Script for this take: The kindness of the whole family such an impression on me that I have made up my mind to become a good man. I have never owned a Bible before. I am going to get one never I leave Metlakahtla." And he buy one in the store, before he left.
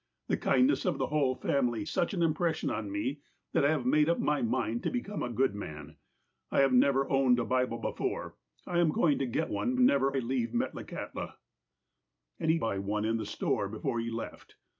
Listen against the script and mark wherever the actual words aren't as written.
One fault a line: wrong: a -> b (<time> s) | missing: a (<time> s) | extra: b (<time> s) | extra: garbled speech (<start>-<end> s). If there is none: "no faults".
no faults